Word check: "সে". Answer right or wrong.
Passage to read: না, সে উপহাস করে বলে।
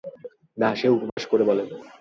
right